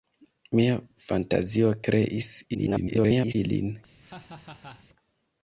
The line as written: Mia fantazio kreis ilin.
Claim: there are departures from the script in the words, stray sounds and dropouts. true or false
true